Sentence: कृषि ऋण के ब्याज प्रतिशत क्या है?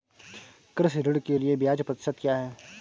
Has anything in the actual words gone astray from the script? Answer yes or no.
yes